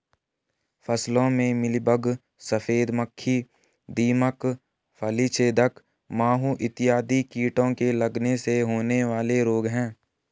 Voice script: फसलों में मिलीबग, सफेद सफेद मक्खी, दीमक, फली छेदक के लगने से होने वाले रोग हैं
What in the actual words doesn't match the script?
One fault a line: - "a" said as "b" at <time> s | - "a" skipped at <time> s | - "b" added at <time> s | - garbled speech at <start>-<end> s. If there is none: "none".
- "सफेद" skipped at 2.9 s
- "माहू इत्यादि कीटों" added at 6.1 s